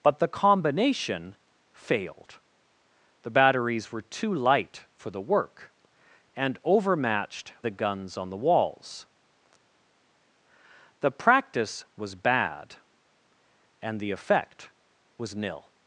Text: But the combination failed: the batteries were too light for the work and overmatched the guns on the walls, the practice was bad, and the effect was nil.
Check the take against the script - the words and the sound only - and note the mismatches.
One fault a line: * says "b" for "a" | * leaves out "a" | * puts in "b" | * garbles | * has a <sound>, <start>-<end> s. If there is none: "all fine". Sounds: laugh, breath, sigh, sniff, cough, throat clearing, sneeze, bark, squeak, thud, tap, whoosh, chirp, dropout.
all fine